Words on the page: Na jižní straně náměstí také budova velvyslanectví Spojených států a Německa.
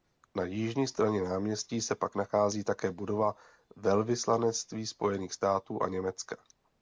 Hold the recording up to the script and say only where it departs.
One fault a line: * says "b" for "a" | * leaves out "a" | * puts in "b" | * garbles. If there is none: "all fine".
* puts in "se pak nachází"